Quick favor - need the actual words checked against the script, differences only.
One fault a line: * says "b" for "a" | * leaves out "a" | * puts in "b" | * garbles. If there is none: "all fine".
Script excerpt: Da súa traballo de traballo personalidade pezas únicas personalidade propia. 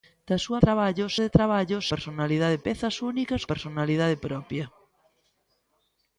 all fine